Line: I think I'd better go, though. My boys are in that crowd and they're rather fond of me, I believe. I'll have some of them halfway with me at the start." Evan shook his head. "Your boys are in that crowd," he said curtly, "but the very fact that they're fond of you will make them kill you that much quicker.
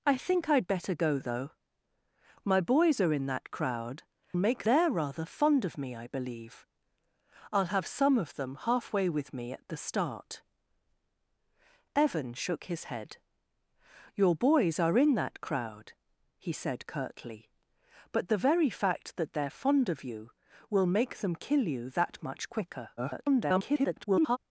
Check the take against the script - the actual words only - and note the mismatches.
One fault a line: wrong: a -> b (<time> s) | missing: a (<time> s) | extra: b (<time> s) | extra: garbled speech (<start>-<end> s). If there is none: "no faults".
wrong: and -> make (4.3 s)
extra: garbled speech (23.0-24.4 s)